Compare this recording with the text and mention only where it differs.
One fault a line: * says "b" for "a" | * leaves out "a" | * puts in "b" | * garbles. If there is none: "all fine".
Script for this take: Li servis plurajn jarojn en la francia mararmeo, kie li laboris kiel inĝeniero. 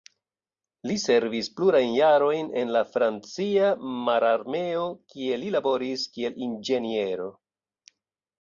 all fine